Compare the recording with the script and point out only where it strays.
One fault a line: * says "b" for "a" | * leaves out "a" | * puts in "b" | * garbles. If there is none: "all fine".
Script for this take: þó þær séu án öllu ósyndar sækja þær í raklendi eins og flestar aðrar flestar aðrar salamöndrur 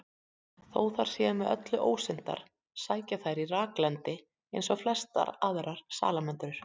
* says "með" for "án"
* leaves out "flestar aðrar"